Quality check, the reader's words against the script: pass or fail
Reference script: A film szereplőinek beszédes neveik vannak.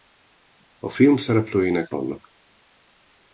fail